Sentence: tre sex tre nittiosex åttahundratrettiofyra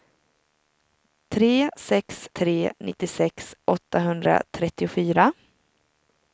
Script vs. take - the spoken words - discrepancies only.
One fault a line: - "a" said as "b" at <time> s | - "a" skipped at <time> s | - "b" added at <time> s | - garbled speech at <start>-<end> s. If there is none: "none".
none